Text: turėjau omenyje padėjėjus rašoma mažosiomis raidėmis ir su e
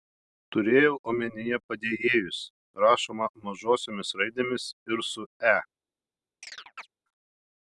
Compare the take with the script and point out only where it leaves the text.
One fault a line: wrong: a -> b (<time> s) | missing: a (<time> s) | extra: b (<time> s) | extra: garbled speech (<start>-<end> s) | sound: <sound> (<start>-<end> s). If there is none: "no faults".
sound: chirp (6.4-6.9 s)